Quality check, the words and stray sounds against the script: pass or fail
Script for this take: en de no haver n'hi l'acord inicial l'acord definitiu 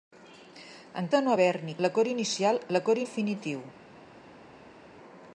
pass